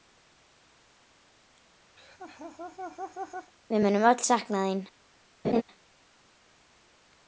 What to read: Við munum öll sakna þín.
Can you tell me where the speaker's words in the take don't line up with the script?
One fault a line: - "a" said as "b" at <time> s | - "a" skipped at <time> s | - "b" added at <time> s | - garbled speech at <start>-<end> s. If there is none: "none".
none